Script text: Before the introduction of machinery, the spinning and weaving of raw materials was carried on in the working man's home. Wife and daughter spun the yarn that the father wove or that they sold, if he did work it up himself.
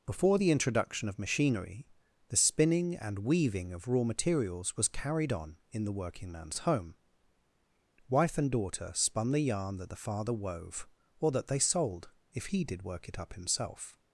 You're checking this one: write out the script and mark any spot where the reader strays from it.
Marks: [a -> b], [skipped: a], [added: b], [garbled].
Before the introduction of machinery, the spinning and weaving of raw materials was carried on in the working man's home. Wife and daughter spun the yarn that the father wove or that they sold, if he did work it up himself.